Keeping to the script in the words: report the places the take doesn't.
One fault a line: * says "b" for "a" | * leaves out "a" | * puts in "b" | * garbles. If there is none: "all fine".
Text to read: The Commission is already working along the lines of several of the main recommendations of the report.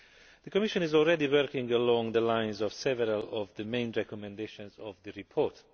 all fine